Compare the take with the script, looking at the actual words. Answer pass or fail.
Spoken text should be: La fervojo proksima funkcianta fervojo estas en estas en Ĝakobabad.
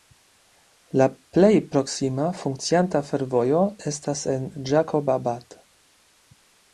fail